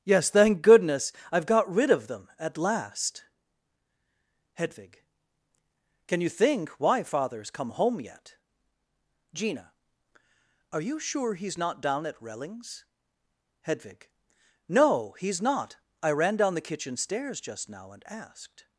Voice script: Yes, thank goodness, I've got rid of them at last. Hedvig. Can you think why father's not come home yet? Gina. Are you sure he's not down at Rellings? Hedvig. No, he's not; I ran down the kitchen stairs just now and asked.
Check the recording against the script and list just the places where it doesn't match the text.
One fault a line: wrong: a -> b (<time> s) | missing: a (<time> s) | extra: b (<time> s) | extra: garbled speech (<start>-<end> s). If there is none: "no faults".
missing: not (7.5 s)